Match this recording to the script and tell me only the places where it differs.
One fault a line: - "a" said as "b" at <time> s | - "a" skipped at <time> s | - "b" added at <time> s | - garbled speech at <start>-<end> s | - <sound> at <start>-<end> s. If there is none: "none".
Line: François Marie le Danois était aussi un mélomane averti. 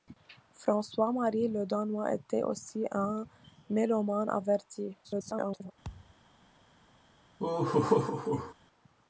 - garbled speech at 5.0-5.7 s
- thud at 5.8-6.2 s
- laugh at 7.4-8.5 s